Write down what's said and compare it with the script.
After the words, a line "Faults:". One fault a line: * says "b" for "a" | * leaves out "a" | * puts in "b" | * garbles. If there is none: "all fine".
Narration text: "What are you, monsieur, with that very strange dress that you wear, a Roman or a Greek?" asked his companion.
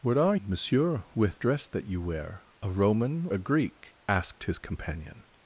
"What are monsieur, with dress that you wear, a Roman a Greek?" asked his companion.
Faults:
* leaves out "you"
* leaves out "that very strange"
* leaves out "or"